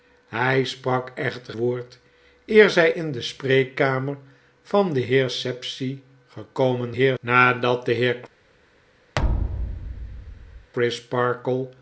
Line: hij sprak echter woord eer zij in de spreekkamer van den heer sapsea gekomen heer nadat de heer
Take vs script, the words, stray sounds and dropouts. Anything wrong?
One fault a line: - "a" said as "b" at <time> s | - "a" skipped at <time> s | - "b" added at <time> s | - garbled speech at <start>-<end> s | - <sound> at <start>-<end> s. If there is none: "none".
- thud at 9.2-10.7 s